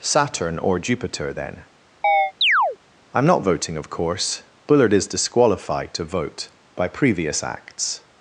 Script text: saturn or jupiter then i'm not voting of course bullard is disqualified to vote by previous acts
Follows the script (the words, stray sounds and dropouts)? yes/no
no